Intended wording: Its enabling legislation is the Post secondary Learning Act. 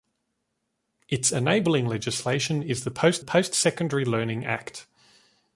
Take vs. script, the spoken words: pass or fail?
fail